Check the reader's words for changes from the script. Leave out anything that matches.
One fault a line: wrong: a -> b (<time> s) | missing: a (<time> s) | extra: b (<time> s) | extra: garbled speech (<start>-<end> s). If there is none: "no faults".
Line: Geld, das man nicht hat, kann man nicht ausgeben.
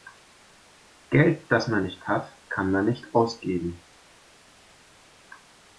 no faults